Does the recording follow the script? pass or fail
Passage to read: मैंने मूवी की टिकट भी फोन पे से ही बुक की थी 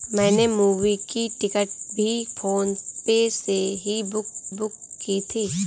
fail